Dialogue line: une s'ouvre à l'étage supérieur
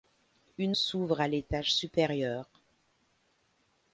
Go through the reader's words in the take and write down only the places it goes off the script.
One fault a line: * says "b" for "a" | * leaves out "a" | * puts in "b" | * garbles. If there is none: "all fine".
all fine